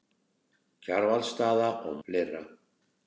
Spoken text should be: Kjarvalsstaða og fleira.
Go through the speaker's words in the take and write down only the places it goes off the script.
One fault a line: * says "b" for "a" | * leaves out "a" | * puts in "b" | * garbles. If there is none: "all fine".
all fine